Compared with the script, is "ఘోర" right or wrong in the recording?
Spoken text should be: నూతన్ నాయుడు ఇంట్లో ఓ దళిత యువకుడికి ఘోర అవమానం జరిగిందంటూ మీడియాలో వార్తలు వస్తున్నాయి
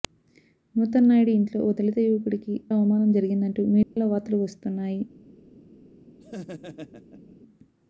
wrong